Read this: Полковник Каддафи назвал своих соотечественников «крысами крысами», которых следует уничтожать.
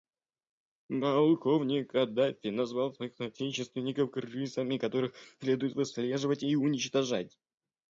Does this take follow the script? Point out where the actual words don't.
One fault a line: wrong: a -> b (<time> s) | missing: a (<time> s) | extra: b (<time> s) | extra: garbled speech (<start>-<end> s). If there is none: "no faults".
missing: крысами (4.8 s)
extra: выслеживать и (5.7 s)